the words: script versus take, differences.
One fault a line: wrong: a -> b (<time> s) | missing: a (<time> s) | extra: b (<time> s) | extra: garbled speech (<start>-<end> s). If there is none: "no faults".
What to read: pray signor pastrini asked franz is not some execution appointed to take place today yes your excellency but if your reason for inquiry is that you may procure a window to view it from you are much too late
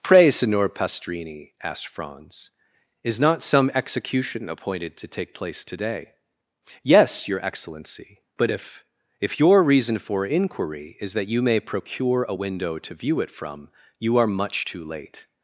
extra: if (9.2 s)